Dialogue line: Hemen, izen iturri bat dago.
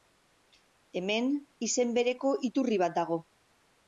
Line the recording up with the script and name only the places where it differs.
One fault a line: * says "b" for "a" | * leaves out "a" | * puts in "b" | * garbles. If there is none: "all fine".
* puts in "bereko"